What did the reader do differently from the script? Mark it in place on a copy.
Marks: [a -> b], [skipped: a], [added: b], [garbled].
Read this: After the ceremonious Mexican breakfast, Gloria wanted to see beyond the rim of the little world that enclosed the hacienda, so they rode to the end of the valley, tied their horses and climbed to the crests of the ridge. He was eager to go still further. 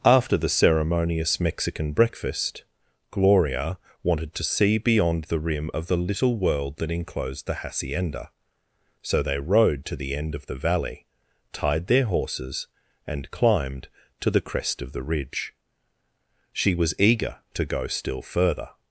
After the ceremonious Mexican breakfast, Gloria wanted to see beyond the rim of the little world that enclosed the hacienda, so they rode to the end of the valley, tied their horses and climbed to the [crests -> crest] of the ridge. [He -> She] was eager to go still further.